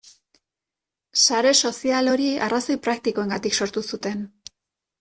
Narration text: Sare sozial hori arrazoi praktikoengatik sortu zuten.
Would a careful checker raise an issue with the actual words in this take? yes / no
no